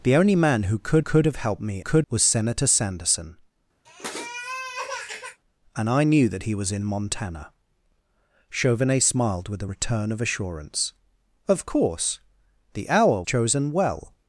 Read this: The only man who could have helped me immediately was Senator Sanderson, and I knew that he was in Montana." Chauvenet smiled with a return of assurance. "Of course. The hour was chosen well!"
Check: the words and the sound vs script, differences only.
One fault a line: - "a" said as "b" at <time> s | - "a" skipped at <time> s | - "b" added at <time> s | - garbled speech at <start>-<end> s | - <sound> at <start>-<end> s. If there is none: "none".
- "could" added at 1.0 s
- "immediately" said as "could" at 1.8 s
- sniff at 3.8-5.4 s
- "was" skipped at 13.2 s